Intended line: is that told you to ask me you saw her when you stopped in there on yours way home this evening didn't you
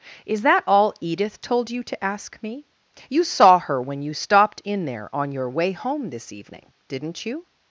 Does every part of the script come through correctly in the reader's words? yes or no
no